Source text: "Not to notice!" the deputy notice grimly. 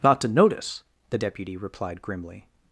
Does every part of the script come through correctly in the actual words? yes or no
no